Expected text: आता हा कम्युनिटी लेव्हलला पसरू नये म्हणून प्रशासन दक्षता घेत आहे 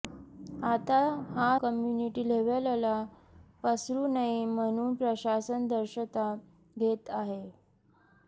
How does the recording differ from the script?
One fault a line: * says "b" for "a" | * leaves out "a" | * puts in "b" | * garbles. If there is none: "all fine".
all fine